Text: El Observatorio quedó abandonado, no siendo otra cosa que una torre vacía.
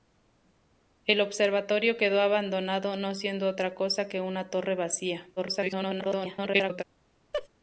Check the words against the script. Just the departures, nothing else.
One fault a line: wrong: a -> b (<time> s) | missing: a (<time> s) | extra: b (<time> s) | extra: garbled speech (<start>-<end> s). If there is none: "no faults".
extra: garbled speech (5.4-6.8 s)